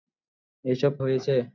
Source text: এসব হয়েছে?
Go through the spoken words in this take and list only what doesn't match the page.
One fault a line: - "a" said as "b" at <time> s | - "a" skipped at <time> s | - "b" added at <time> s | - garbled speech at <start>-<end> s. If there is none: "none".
none